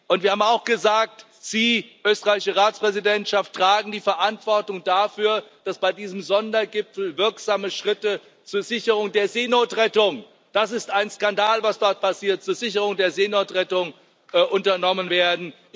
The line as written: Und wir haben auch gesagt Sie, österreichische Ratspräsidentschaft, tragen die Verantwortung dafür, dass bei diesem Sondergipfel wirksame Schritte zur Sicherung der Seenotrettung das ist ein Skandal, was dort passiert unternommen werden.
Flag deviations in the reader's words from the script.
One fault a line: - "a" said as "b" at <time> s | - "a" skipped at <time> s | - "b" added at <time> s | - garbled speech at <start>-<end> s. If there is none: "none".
none